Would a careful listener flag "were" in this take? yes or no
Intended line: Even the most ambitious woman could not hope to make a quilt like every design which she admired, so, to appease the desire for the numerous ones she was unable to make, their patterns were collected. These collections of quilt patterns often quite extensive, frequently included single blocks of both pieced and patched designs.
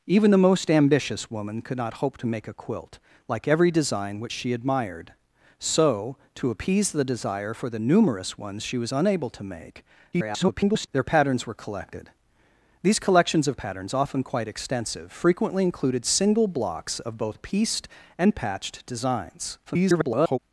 no